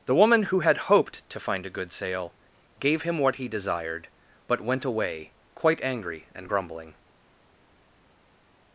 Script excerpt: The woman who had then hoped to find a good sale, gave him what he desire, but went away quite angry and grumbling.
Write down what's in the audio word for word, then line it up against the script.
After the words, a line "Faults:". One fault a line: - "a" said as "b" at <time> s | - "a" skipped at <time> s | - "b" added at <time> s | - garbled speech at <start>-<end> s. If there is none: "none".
The woman who had hoped to find a good sale, gave him what he desired, but went away quite angry and grumbling.
Faults:
- "then" skipped at 0.9 s
- "desire" said as "desired" at 3.5 s